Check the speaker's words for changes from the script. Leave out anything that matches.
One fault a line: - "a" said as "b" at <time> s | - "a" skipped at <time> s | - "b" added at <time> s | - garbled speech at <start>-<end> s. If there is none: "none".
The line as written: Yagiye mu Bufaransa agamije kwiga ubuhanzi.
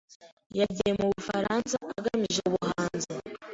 - "kwiga" skipped at 2.4 s